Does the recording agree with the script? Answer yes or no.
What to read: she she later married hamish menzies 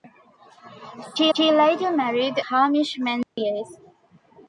yes